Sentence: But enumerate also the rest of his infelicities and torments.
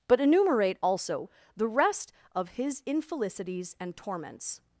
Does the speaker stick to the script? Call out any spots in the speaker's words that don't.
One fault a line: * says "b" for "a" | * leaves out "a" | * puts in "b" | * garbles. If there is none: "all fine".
all fine